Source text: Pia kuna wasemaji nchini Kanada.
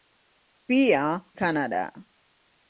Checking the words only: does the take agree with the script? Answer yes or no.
no